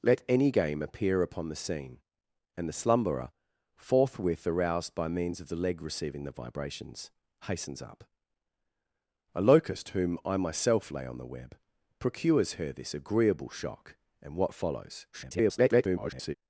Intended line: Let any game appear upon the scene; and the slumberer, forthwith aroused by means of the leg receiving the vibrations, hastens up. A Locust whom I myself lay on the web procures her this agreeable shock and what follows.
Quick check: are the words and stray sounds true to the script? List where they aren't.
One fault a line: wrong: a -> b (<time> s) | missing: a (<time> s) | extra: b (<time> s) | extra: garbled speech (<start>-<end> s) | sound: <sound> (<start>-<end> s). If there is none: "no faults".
extra: garbled speech (15.1-16.3 s)